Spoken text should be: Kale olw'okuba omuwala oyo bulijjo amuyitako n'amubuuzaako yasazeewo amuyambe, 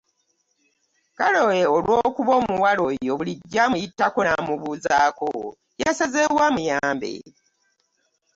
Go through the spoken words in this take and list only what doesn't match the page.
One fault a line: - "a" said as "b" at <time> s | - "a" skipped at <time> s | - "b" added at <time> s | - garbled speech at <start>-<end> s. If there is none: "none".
none